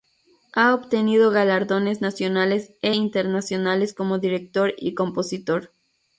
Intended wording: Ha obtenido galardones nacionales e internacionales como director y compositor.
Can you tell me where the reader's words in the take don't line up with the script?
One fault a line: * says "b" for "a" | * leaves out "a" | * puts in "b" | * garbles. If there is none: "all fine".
all fine